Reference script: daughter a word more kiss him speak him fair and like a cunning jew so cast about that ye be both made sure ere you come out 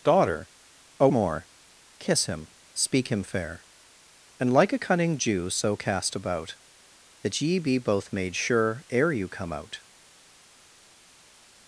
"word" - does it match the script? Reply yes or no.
no